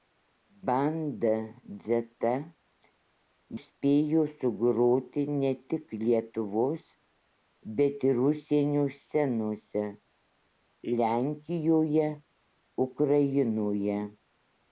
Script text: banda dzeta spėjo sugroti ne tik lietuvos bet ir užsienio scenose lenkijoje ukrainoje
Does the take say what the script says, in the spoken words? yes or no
yes